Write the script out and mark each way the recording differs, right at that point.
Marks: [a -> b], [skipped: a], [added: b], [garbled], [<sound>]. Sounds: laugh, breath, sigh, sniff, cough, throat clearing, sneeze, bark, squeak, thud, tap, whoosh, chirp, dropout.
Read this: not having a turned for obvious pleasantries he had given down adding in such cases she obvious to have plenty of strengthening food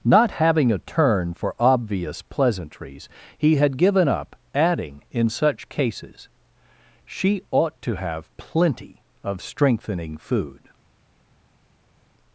not having a [turned -> turn] for obvious pleasantries he had given [down -> up] adding in such cases she [obvious -> ought] to have plenty of strengthening food